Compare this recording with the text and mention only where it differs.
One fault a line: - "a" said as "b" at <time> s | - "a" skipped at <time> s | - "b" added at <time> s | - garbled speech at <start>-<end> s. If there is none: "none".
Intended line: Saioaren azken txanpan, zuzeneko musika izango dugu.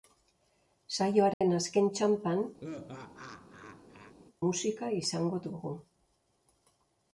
- "zuzeneko" skipped at 2.4 s